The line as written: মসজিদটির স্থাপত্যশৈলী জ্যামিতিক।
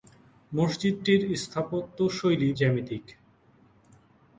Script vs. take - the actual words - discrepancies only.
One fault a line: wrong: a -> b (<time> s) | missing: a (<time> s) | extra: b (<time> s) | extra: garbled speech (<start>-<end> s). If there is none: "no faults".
no faults